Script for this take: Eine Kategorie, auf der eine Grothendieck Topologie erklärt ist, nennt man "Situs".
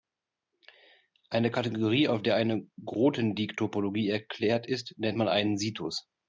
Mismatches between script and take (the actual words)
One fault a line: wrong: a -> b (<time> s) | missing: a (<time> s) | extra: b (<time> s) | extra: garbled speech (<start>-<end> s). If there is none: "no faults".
extra: einen (5.3 s)